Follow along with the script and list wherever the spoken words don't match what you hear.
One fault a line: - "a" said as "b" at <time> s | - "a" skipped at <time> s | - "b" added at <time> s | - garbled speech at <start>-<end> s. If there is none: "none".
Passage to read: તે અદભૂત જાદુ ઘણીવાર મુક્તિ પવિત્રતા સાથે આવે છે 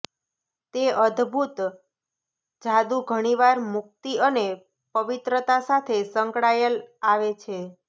- "અને" added at 4.3 s
- "સંકળાયેલ" added at 6.1 s